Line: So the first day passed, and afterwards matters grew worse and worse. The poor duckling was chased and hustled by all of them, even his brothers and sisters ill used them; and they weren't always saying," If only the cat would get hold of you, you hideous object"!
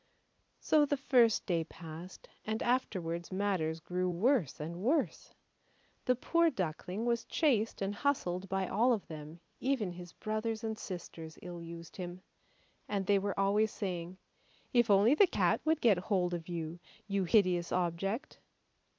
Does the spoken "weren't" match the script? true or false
false